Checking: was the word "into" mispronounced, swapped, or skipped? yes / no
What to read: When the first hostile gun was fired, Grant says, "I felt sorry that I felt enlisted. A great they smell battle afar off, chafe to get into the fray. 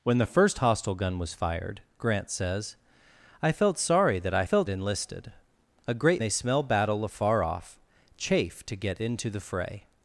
no